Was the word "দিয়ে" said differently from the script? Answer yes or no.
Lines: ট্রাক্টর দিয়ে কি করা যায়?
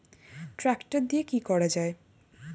no